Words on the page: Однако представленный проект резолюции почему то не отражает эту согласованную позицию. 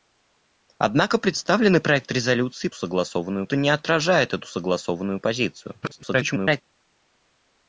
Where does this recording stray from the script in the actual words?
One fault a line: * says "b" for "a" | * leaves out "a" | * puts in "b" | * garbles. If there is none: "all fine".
* says "согласованную" for "почему"
* garbles